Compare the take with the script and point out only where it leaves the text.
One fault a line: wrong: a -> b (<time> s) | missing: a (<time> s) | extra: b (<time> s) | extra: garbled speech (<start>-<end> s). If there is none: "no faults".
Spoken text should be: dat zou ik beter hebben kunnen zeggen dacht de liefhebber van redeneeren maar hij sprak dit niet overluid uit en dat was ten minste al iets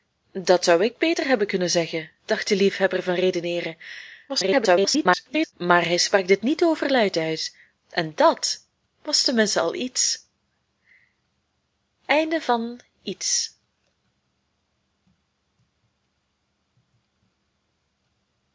extra: garbled speech (4.3-5.5 s)